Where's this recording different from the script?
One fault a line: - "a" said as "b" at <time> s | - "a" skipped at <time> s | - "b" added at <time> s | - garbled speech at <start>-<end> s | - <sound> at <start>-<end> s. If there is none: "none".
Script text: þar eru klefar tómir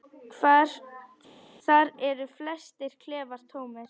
- "flestir" added at 2.4 s